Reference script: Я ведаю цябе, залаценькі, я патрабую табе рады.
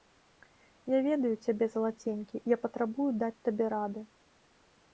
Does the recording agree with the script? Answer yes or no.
no